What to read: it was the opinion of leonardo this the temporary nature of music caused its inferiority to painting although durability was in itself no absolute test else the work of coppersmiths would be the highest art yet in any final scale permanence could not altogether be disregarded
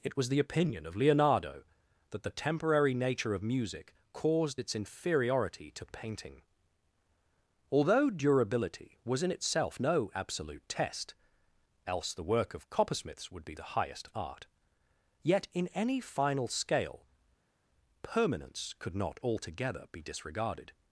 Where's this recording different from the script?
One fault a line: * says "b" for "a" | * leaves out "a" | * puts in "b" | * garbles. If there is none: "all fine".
* says "that" for "this"